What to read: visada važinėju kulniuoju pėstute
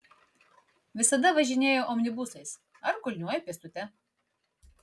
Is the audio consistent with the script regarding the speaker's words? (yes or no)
no